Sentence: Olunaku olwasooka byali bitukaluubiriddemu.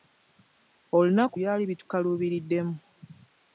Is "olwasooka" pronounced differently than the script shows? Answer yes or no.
yes